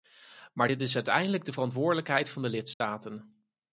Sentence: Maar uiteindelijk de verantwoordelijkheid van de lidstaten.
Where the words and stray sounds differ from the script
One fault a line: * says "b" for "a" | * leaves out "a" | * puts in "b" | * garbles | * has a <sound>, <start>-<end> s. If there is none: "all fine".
* puts in "dit is"
* has a dropout, 2.7-2.8 s